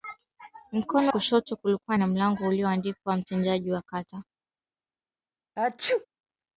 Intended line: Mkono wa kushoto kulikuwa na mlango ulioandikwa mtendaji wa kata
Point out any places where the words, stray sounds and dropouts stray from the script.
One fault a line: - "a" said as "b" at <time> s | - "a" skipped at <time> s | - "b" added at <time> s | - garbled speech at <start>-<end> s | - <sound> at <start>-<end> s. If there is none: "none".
- "wa" skipped at 1.1 s
- sneeze at 5.6-6.1 s